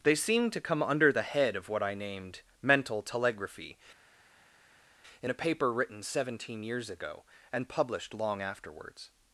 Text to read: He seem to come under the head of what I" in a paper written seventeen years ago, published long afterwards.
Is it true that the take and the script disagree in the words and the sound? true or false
true